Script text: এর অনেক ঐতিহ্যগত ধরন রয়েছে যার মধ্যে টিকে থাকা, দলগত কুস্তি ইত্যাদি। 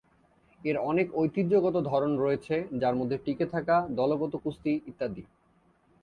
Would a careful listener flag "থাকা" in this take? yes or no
no